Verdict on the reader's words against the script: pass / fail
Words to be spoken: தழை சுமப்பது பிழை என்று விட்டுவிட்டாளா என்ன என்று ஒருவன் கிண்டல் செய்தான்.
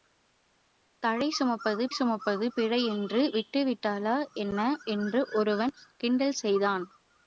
fail